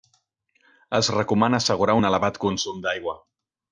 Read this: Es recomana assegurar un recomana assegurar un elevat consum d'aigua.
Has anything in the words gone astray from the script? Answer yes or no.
yes